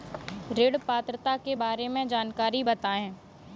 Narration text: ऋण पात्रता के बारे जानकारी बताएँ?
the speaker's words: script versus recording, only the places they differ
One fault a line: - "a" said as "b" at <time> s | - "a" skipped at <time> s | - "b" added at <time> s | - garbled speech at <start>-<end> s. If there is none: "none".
- "में" added at 1.9 s